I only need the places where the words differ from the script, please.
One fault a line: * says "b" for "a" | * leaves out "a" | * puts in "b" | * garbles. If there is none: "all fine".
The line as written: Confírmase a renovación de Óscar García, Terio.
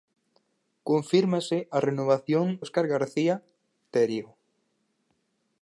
* leaves out "de"